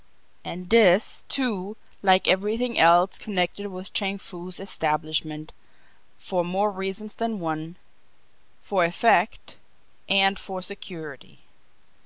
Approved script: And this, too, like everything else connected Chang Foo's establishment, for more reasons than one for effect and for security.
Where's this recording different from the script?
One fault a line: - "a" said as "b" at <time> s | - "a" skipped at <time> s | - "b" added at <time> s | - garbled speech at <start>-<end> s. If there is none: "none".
- "with" added at 3.7 s